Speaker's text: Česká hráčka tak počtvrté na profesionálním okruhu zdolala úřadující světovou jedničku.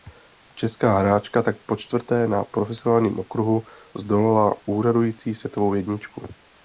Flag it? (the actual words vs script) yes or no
no